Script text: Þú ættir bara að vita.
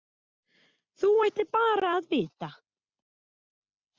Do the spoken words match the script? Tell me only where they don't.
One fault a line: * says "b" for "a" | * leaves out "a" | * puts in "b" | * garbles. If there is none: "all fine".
all fine